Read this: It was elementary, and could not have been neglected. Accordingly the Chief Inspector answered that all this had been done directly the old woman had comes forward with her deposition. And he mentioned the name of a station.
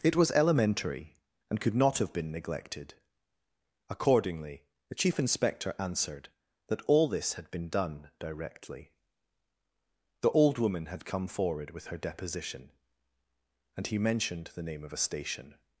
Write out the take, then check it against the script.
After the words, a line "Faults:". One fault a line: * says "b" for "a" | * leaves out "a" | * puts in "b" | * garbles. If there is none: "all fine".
It was elementary, and could not have been neglected. Accordingly the Chief Inspector answered that all this had been done directly the old woman had come forward with her deposition. And he mentioned the name of a station.
Faults:
* says "come" for "comes"